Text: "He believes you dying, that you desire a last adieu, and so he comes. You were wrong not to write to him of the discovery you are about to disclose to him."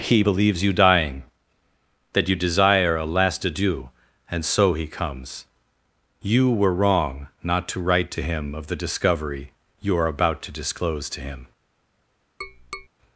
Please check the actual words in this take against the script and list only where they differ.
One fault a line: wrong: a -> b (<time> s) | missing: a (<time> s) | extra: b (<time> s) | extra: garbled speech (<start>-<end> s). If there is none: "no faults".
no faults